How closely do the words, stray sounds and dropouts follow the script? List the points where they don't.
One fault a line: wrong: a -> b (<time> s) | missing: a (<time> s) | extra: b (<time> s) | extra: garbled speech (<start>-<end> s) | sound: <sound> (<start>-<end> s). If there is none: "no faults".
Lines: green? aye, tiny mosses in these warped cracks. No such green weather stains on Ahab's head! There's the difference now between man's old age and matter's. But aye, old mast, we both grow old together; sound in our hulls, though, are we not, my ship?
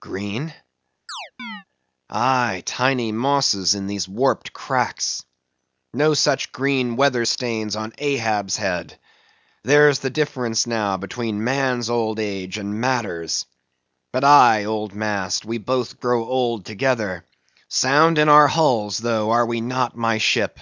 sound: chirp (1.1-1.6 s)